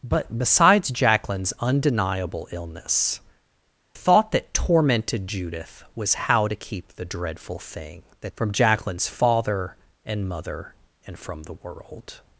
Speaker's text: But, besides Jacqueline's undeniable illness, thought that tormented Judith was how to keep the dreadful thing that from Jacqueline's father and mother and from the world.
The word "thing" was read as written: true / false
true